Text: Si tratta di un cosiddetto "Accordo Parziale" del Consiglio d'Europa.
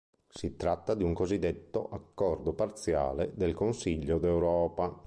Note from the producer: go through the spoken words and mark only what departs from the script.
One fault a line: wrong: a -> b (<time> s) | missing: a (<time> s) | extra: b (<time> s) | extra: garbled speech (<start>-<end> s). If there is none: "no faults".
no faults